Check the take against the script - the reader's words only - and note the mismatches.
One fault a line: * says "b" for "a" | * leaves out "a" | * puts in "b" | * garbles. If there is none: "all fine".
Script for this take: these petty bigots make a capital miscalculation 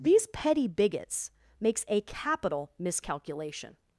* says "makes" for "make"